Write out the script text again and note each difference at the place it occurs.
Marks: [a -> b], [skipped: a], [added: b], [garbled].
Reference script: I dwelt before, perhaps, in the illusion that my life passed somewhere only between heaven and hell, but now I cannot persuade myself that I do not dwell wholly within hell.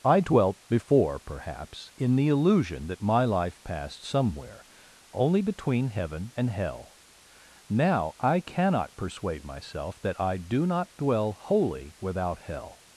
I dwelt before, perhaps, in the illusion that my life passed somewhere only between heaven and hell, [skipped: but] now I cannot persuade myself that I do not dwell wholly [within -> without] hell.